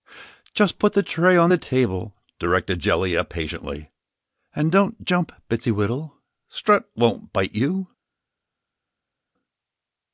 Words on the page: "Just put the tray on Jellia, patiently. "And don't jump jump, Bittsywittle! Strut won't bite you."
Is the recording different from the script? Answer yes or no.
yes